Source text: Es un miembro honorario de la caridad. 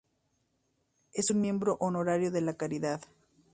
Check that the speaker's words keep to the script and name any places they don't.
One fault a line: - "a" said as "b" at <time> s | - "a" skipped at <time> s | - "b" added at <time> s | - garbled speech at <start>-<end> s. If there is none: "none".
none